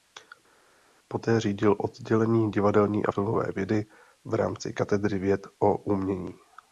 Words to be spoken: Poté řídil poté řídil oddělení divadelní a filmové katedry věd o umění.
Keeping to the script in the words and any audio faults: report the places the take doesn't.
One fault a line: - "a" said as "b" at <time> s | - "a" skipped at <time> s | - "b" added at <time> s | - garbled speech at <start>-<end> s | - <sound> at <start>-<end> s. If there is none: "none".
- "poté řídil" skipped at 1.8 s
- "vědy v rámci" added at 3.6 s